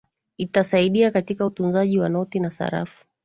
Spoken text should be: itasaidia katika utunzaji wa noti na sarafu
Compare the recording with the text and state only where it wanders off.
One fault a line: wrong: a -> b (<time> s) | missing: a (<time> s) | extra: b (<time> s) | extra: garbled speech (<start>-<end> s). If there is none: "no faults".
no faults